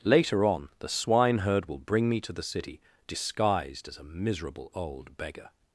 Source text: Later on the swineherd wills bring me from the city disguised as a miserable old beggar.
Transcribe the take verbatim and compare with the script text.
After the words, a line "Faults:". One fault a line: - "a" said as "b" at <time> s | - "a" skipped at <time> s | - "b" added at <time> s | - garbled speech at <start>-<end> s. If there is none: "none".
Later on the swineherd will bring me to the city disguised as a miserable old beggar.
Faults:
- "wills" said as "will" at 1.7 s
- "from" said as "to" at 2.2 s